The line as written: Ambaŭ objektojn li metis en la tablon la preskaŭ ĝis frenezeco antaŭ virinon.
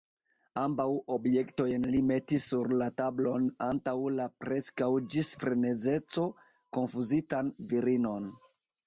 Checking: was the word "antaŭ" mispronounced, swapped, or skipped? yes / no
yes